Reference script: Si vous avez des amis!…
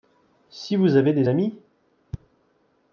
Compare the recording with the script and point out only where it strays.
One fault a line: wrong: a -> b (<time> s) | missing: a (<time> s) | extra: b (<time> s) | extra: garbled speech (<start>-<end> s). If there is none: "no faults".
no faults